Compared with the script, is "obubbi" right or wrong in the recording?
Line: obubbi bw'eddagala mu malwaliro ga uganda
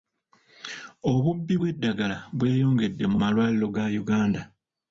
right